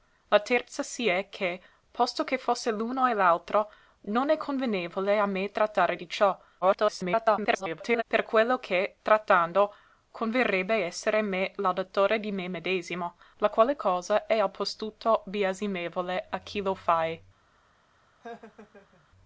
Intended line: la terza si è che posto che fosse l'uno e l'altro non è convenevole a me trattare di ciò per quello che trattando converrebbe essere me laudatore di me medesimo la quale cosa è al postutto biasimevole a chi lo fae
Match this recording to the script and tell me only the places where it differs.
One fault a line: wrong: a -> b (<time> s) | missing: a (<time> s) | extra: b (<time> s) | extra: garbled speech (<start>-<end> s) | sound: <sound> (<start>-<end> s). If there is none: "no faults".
extra: garbled speech (6.6-8.0 s)
sound: laugh (18.2-19.1 s)